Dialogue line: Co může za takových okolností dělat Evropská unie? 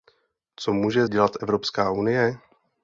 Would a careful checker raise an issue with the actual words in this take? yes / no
yes